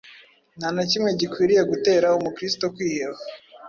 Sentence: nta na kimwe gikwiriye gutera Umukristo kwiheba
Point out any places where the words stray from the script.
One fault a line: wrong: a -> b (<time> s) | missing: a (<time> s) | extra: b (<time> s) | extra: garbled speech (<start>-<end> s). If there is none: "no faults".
no faults